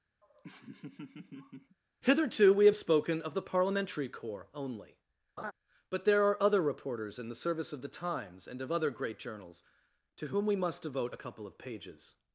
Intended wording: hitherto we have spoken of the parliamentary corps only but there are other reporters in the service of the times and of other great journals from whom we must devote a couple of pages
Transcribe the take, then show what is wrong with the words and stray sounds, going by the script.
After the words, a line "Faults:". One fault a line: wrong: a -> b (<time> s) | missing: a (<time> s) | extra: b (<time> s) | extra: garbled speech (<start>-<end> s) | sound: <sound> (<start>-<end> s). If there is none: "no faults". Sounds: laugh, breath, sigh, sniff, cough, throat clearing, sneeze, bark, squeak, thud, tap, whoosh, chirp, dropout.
hitherto we have spoken of the parliamentary corps only but there are other reporters in the service of the times and of other great journals to whom we must devote a couple of pages
Faults:
sound: laugh (0.2-1.8 s)
sound: laugh (5.4-5.5 s)
wrong: from -> to (10.2 s)